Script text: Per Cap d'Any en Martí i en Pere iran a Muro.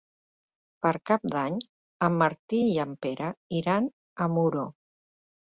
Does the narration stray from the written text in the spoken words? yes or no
no